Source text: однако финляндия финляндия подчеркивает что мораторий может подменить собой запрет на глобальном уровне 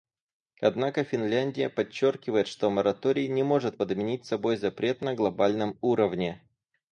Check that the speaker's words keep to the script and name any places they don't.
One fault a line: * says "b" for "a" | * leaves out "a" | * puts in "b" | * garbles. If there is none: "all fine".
* leaves out "финляндия"
* puts in "не"